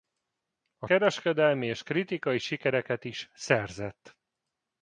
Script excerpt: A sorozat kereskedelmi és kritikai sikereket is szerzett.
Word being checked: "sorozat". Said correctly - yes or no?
no